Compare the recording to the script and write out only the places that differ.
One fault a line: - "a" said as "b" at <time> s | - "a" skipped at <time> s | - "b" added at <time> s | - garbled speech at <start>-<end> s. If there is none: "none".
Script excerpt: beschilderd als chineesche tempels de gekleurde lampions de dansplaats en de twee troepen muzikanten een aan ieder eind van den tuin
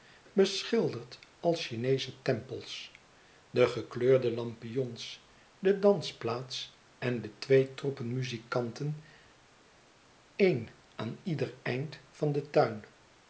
none